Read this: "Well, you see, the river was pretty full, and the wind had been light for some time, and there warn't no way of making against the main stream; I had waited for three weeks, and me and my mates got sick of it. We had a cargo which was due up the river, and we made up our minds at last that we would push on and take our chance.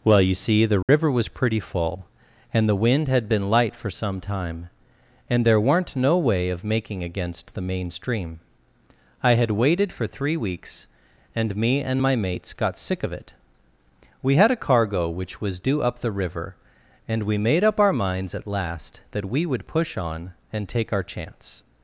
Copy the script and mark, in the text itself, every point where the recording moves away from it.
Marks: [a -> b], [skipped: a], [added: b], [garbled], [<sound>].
"Well, you see, the river [dropout] was pretty full, and the wind had been light for some time, and there [warn't -> weren't] no way of making against the main stream; I had waited for three weeks, and me and my mates got sick of it. We had a cargo which was due up the river, and we made up our minds at last that we would push on and take our chance.